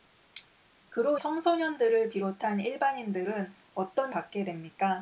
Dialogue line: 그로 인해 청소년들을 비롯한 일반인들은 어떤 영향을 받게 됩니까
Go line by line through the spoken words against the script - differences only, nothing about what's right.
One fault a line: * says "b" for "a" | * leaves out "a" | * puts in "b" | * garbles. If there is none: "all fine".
* leaves out "인해"
* leaves out "영향을"